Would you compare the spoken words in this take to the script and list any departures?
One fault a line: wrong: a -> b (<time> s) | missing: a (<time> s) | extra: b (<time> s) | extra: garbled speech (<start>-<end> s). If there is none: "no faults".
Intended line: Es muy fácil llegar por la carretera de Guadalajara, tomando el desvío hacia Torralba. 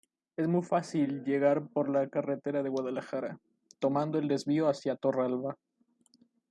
no faults